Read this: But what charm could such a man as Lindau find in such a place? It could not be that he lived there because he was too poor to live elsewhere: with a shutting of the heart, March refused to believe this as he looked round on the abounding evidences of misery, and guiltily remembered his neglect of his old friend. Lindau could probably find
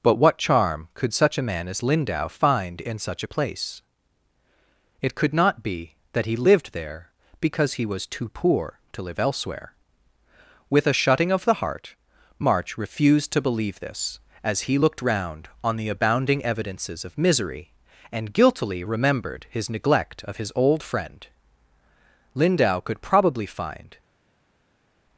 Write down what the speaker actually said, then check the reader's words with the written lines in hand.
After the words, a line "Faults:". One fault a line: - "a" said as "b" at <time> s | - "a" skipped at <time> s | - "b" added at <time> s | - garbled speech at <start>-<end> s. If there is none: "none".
But what charm could such a man as Lindau find in such a place? It could not be that he lived there because he was too poor to live elsewhere: with a shutting of the heart, March refused to believe this as he looked round on the abounding evidences of misery, and guiltily remembered his neglect of his old friend. Lindau could probably find
Faults:
none